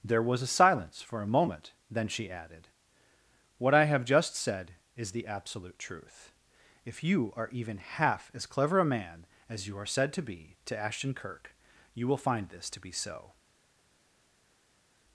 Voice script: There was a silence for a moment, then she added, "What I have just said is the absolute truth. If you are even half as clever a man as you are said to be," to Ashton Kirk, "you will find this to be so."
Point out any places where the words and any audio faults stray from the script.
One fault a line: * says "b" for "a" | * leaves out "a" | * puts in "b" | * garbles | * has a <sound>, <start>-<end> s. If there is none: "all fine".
all fine